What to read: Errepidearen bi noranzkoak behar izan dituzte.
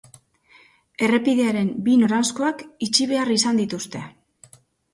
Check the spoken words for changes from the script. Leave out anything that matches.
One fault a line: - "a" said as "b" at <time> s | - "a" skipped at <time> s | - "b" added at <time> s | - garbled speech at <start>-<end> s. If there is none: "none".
- "itxi" added at 2.9 s